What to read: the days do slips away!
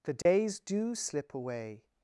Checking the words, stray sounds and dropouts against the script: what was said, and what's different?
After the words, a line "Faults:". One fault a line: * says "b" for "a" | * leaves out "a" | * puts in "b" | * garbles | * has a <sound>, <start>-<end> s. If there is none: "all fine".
the days do slip away!
Faults:
* has a dropout, 0.2-0.3 s
* says "slip" for "slips"